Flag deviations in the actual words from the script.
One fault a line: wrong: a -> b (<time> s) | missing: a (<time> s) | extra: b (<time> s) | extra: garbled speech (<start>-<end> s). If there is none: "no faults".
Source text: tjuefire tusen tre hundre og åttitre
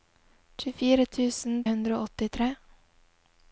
missing: tre (1.6 s)